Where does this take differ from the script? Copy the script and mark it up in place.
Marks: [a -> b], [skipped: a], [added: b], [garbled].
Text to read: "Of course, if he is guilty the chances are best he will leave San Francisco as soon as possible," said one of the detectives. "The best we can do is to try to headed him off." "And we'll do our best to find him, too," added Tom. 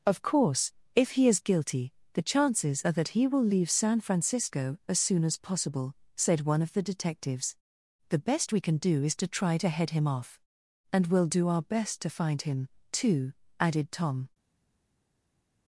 "Of course, if he is guilty the chances are [best -> that] he will leave San Francisco as soon as possible," said one of the detectives. "The best we can do is to try to [headed -> head] him off." "And we'll do our best to find him, too," added Tom.